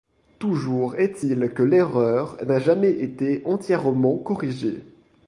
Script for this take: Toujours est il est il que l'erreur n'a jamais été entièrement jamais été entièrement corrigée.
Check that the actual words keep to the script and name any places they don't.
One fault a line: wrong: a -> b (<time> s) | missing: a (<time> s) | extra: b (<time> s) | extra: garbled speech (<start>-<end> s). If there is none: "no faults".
missing: est il (1.5 s)
missing: jamais été entièrement (4.2 s)